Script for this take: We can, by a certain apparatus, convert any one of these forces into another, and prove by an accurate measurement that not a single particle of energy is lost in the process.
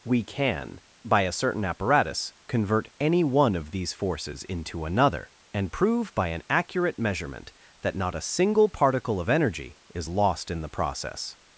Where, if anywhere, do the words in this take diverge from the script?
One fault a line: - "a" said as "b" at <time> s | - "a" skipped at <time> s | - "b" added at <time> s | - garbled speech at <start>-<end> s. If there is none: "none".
none